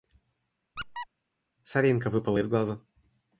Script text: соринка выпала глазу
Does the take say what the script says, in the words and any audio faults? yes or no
no